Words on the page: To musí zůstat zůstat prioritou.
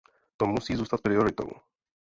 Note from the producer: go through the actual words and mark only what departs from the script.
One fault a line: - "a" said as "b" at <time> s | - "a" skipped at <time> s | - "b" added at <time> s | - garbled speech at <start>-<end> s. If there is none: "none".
- "zůstat" skipped at 1.0 s